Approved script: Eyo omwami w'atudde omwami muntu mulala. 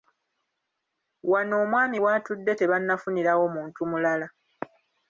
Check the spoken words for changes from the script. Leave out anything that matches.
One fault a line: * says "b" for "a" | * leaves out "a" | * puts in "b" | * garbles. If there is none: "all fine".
* says "Wano" for "Eyo"
* says "tebannafunirawo" for "omwami"